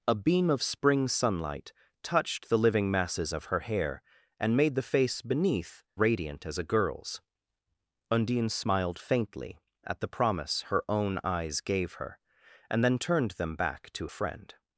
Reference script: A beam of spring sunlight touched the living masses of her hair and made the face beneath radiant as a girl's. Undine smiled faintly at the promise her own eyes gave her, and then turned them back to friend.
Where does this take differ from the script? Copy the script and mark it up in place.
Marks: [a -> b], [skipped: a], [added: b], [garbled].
A beam of spring sunlight touched the living masses of her hair and made the face beneath radiant as a girl's. Undine smiled faintly at the promise her own eyes gave her, and then turned them back to friend.